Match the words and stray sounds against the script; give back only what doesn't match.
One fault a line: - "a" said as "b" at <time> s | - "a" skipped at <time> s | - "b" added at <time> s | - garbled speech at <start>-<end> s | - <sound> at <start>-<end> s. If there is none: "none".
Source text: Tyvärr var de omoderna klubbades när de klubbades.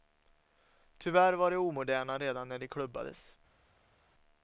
- "klubbades" said as "redan" at 2.2 s